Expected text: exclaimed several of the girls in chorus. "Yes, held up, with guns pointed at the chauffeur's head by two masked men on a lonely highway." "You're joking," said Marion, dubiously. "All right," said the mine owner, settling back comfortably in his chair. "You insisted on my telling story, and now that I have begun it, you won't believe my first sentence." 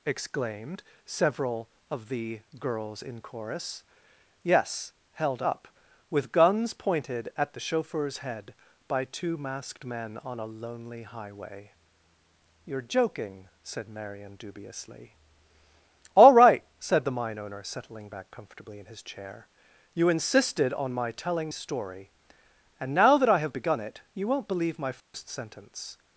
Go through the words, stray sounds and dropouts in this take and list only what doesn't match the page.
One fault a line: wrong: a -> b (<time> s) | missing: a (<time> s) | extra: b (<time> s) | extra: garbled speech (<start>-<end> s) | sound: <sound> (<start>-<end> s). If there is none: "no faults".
sound: dropout (25.0-25.1 s)